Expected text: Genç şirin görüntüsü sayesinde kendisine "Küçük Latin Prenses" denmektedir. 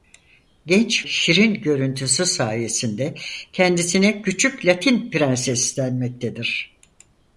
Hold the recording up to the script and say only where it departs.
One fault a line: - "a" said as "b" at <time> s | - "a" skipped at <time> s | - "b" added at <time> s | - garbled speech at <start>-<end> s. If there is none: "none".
none